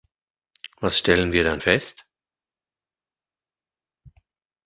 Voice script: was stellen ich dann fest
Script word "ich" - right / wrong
wrong